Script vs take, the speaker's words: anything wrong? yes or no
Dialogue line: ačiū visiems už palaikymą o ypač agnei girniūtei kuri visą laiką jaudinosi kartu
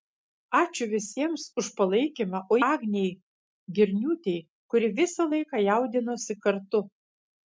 yes